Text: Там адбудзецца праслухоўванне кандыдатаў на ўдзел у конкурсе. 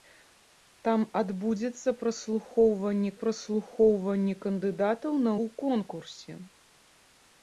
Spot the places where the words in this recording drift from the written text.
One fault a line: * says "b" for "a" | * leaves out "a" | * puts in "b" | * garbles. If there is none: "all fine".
* puts in "праслухоўванне"
* leaves out "ўдзел"